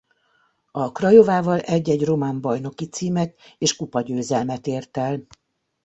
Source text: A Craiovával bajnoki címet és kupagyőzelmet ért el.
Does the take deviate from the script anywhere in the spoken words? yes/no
yes